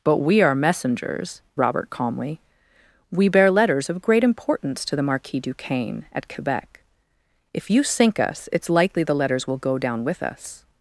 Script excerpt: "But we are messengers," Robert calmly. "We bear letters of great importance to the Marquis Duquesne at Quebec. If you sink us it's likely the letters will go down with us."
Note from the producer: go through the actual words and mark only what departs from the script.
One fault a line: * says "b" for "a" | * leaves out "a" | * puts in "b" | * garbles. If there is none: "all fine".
all fine